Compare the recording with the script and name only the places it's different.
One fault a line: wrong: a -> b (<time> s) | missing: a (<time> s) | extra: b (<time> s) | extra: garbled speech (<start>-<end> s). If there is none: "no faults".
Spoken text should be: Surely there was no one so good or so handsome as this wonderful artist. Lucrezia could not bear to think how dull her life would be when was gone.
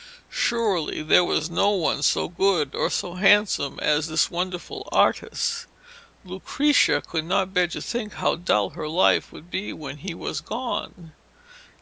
extra: he (10.0 s)